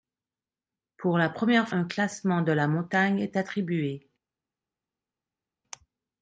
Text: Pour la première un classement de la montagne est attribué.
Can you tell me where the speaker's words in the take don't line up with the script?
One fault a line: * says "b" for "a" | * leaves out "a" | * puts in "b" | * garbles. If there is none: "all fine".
all fine